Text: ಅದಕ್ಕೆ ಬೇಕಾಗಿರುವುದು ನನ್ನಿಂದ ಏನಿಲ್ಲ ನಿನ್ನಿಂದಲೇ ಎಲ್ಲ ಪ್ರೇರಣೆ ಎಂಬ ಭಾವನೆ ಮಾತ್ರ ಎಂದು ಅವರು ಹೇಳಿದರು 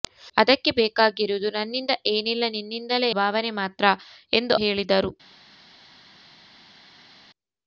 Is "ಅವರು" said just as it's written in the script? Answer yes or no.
no